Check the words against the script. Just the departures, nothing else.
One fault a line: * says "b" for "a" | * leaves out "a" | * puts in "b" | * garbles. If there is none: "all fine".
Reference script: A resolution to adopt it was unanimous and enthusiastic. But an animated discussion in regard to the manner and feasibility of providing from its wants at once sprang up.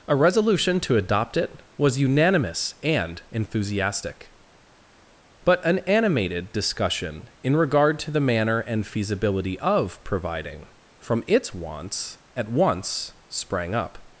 all fine